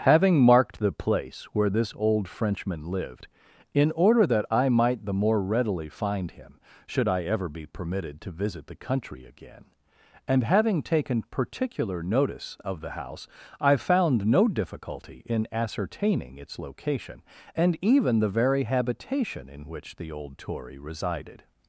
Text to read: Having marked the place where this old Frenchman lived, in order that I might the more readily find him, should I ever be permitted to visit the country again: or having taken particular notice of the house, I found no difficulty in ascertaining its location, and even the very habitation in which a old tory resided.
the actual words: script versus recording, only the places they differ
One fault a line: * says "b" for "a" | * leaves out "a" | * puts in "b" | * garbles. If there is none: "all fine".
* says "and" for "or"
* says "the" for "a"